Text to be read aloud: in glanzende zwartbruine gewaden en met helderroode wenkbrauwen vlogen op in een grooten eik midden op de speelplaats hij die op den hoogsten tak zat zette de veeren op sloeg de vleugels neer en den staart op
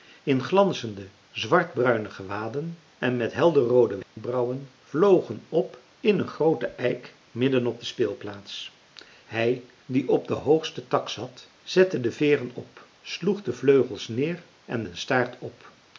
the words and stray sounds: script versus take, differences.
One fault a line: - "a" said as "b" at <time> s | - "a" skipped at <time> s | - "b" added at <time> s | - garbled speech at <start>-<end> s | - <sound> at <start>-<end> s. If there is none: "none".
- dropout at 4.0-4.2 s